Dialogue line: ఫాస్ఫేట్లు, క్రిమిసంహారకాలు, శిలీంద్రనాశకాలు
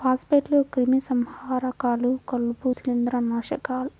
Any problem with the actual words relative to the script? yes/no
yes